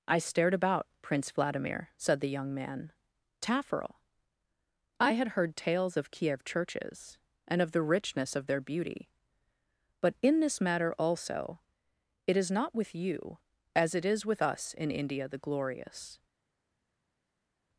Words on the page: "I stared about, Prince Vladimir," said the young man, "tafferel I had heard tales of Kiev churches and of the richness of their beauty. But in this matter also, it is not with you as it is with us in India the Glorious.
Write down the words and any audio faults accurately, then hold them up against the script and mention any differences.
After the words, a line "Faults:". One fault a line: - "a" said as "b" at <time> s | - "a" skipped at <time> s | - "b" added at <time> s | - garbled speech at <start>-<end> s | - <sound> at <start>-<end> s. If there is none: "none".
"I stared about, Prince Vladimir," said the young man, "tafferel I had heard tales of Kiev churches and of the richness of their beauty. But in this matter also, it is not with you as it is with us in India the Glorious.
Faults:
none